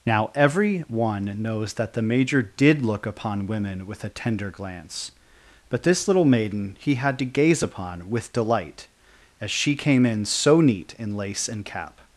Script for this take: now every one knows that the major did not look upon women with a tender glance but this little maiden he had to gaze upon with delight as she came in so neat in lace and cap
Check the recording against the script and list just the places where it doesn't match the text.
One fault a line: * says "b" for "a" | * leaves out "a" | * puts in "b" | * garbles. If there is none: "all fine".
* leaves out "not"